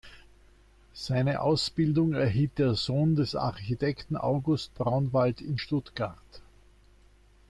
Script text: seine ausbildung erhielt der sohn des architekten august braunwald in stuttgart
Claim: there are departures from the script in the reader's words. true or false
false